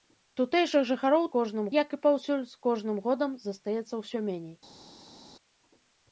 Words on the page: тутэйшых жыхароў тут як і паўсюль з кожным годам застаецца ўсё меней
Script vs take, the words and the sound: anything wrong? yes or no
yes